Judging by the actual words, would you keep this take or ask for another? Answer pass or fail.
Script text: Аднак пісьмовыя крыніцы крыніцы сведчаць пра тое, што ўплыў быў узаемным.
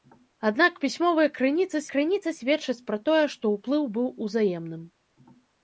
pass